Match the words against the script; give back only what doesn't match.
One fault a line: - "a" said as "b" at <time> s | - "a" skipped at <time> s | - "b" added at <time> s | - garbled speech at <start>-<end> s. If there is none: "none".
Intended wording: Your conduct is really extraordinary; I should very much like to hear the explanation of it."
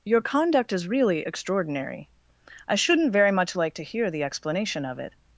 - "should" said as "shouldn't" at 2.8 s